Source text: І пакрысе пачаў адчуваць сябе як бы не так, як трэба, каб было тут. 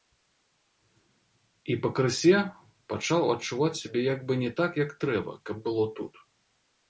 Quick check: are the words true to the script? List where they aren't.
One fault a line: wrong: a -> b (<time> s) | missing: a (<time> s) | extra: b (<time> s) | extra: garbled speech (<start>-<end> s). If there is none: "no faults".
no faults